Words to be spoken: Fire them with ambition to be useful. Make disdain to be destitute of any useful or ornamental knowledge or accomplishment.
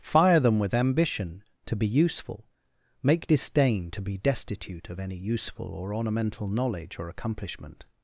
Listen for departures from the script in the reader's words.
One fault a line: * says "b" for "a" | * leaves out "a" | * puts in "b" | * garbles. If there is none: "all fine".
all fine